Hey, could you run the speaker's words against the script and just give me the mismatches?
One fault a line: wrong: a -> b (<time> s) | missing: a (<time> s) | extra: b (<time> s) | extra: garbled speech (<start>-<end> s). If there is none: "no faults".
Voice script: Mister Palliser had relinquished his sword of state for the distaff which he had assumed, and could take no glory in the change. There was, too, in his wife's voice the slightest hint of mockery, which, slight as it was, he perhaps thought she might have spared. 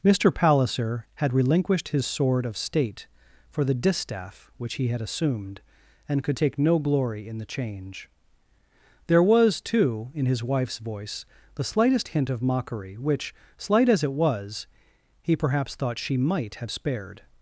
no faults